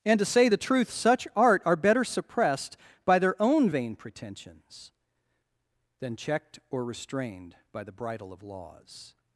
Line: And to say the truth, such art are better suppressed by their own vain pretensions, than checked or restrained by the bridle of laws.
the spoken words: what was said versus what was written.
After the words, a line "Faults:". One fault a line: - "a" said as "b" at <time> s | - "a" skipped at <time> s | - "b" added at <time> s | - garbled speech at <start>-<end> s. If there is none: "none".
And to say the truth, such art are better suppressed by their own vain pretensions, than checked or restrained by the bridle of laws.
Faults:
none